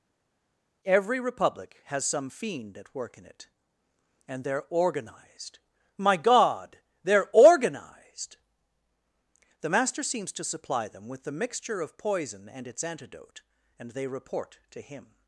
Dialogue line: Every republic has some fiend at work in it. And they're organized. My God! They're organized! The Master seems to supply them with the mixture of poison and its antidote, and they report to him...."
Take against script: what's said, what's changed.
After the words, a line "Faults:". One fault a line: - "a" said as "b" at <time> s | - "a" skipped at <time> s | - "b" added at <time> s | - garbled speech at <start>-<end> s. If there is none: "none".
Every republic has some fiend at work in it. And they're organized. My God! They're organized! The Master seems to supply them with the mixture of poison and its antidote, and they report to him...."
Faults:
none